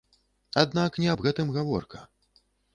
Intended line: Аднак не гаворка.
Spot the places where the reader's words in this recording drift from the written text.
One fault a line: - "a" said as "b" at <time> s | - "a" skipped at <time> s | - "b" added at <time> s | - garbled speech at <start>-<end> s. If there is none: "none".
- "аб гэтым" added at 1.1 s